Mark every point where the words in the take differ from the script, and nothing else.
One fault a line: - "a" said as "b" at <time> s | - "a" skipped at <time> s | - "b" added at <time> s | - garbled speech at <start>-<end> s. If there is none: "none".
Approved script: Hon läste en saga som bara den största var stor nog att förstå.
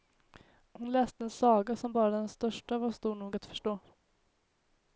none